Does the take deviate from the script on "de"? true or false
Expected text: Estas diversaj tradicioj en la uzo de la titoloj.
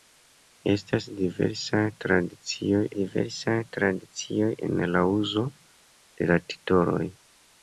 false